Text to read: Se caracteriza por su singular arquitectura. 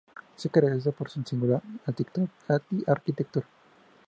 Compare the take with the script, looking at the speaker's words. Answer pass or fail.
pass